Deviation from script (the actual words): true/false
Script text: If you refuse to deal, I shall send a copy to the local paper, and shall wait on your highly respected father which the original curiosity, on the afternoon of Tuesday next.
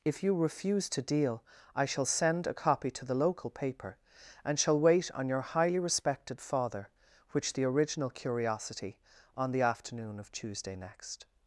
false